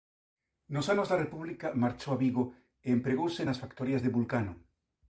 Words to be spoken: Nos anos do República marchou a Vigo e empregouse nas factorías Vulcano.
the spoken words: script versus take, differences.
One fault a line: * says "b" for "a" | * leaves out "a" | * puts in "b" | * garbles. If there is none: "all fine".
* says "da" for "do"
* puts in "de"